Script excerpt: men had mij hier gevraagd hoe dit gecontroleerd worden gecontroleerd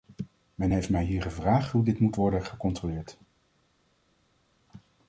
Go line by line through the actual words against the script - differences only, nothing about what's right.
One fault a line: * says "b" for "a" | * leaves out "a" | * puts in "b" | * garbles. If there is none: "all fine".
* says "heeft" for "had"
* says "moet" for "gecontroleerd"